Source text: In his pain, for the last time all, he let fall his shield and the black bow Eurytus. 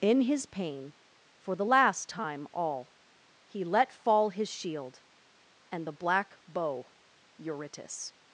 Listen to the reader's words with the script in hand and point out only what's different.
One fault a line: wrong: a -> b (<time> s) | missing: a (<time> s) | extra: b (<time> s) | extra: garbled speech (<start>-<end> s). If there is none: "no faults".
no faults